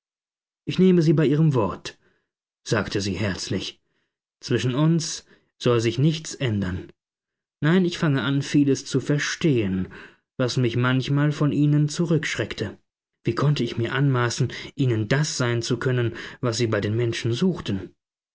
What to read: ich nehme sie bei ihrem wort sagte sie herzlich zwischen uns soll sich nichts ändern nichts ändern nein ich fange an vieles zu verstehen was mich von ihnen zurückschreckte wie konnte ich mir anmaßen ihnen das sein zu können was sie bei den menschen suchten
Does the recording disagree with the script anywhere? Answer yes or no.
yes